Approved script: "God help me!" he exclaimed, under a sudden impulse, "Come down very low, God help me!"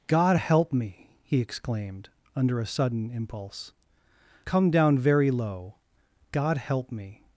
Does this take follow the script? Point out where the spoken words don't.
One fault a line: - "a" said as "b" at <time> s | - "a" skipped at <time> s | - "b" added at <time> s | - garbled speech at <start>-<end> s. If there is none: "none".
none